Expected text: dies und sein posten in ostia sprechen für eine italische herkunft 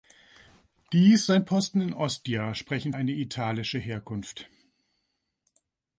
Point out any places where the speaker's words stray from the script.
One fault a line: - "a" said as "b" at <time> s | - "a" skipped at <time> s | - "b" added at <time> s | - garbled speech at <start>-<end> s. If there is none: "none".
- "und" skipped at 1.3 s
- "für" skipped at 2.9 s